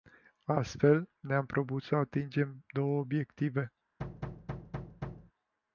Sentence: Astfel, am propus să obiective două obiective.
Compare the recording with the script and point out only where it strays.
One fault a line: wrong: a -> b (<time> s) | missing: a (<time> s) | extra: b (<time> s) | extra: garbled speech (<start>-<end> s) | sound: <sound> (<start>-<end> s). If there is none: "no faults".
extra: ne (1.2 s)
wrong: obiective -> atingem (2.0 s)
sound: thud (4.0-5.3 s)